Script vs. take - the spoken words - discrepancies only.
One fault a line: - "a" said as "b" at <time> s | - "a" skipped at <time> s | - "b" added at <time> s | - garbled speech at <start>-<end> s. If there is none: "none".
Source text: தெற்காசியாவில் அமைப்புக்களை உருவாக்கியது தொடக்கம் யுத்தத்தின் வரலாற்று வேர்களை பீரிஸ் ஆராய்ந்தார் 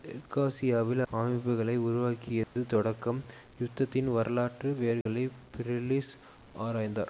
none